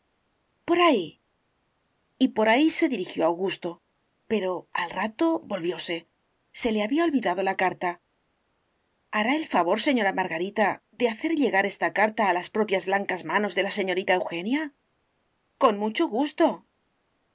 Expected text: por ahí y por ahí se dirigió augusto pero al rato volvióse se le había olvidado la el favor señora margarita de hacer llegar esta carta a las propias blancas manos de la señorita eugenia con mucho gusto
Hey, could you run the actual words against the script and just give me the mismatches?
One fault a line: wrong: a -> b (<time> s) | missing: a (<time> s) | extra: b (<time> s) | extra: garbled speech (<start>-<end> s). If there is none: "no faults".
extra: carta hará (7.5 s)